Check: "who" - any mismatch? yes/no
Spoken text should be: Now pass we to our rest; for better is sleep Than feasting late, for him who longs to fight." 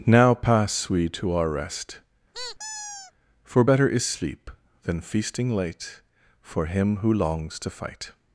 no